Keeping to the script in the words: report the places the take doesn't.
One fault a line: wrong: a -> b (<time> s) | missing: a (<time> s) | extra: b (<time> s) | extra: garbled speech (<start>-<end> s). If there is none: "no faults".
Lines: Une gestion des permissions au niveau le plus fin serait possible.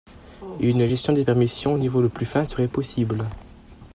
no faults